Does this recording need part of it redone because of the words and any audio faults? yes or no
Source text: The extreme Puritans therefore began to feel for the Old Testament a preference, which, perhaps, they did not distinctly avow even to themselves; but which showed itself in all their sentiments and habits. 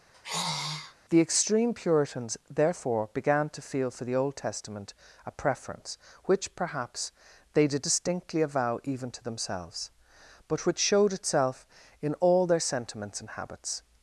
yes